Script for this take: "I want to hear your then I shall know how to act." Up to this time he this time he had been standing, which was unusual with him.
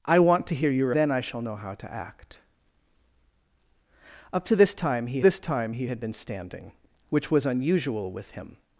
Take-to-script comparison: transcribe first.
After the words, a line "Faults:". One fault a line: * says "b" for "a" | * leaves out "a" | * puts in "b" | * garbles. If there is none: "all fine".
"I want to hear your then I shall know how to act." Up to this time he this time he had been standing, which was unusual with him.
Faults:
all fine